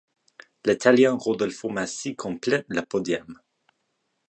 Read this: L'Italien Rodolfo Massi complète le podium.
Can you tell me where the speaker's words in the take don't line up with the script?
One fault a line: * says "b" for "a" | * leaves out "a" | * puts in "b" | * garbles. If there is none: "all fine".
all fine